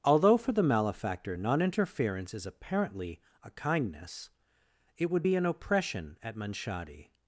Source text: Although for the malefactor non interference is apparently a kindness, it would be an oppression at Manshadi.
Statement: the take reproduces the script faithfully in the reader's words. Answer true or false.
true